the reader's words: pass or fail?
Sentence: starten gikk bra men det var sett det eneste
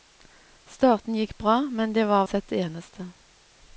pass